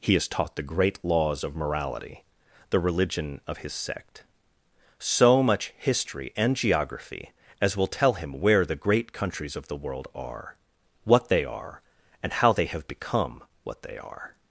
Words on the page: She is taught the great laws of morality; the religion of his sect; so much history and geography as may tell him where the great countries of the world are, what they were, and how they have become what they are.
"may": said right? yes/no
no